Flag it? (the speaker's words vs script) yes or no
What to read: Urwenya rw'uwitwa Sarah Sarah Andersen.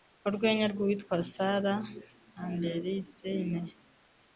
yes